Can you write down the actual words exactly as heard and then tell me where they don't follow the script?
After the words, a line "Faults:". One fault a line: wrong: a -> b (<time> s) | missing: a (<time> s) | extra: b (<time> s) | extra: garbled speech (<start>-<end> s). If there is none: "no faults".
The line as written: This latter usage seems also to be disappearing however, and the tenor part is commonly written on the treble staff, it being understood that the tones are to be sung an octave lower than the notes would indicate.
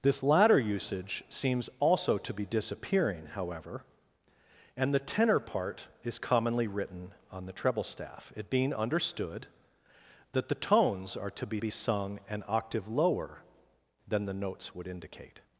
This latter usage seems also to be disappearing however, and the tenor part is commonly written on the treble staff, it being understood that the tones are to be be sung an octave lower than the notes would indicate.
Faults:
extra: be (11.6 s)